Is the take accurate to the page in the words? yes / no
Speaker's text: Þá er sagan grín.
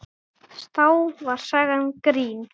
no